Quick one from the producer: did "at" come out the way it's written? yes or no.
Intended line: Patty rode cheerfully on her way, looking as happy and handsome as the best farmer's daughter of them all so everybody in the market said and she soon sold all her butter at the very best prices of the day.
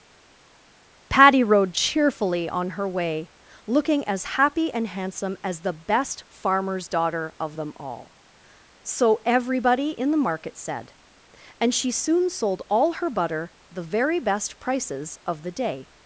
no